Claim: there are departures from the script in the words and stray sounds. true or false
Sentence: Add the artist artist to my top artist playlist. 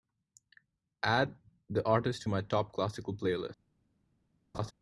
true